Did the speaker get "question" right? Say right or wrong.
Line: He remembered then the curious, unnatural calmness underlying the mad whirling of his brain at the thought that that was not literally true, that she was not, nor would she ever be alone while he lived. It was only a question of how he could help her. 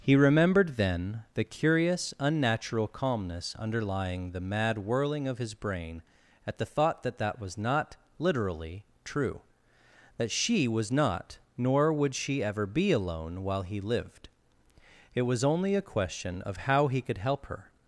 right